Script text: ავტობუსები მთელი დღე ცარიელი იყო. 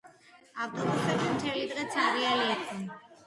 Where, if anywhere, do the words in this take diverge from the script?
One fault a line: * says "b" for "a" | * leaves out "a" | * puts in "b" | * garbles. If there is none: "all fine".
all fine